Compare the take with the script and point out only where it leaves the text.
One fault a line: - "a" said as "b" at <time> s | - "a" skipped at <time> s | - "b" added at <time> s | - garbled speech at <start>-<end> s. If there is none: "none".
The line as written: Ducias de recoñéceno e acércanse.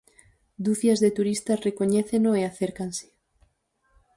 - "turistas" added at 1.2 s